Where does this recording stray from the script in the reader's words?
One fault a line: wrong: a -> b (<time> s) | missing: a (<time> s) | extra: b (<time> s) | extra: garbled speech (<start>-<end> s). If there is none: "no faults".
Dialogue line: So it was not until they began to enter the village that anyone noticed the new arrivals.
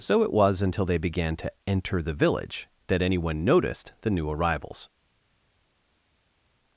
missing: not (0.6 s)